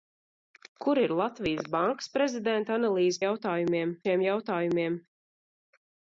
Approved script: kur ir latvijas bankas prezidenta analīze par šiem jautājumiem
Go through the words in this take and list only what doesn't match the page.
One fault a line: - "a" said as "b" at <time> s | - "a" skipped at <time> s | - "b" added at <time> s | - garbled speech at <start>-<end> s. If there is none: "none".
- "par" said as "jautājumiem" at 3.2 s